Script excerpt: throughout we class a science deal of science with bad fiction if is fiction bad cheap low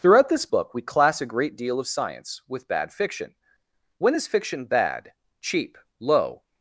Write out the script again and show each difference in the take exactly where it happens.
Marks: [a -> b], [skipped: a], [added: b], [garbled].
throughout [added: this book] we class a [science -> great] deal of science with bad fiction [if -> when] is fiction bad cheap low